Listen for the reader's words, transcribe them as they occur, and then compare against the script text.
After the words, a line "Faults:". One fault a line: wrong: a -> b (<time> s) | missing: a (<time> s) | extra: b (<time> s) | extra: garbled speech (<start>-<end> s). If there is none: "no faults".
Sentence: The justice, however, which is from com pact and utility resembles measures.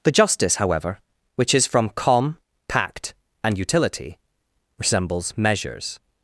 The justice, however, which is from com pact and utility resembles measures.
Faults:
no faults